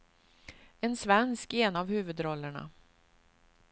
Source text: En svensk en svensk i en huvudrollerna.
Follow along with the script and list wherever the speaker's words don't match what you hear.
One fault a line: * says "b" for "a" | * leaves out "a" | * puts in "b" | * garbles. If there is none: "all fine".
* leaves out "en svensk"
* puts in "av"